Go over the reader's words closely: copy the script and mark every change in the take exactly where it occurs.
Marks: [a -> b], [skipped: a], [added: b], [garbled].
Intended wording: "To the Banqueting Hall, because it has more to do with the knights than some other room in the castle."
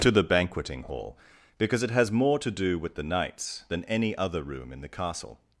"To the Banqueting Hall, because it has more to do with the knights than [some -> any] other room in the castle."